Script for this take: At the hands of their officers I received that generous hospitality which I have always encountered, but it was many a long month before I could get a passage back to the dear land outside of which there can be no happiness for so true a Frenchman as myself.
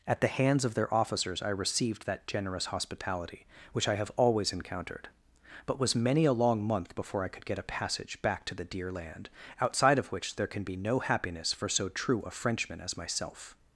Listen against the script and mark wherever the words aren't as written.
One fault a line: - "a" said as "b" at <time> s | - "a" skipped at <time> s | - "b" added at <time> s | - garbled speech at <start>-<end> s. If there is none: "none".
- "it" skipped at 5.8 s